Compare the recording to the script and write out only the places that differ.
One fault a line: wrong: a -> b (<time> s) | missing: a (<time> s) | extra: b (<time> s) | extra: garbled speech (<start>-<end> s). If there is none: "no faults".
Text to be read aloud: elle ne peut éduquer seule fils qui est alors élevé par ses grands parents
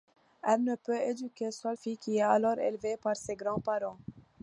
no faults